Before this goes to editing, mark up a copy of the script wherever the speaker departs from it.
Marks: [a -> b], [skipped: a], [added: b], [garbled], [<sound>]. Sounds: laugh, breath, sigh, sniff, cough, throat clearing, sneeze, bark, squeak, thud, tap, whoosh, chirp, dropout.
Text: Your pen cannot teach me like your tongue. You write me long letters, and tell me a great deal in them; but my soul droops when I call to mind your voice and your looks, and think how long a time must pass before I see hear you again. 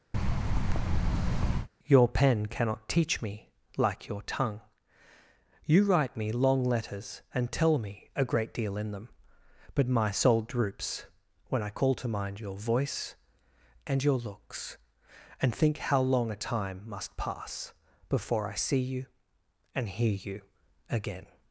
[thud] Your pen cannot teach me like your tongue. You write me long letters, and tell me a great deal in them; but my soul droops when I call to mind your voice and your looks, and think how long a time must pass before I see [added: you and] hear you again.